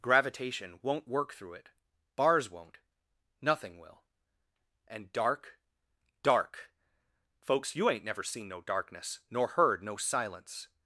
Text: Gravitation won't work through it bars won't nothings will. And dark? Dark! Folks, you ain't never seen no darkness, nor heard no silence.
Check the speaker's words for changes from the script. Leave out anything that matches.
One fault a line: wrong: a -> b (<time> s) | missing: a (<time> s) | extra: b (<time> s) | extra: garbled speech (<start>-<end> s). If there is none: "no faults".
wrong: nothings -> nothing (3.4 s)